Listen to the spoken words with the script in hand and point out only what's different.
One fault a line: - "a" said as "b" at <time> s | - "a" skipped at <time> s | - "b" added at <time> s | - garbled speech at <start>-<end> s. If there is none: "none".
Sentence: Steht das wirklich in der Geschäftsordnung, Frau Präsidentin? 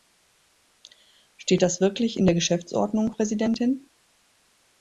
- "Frau" skipped at 3.1 s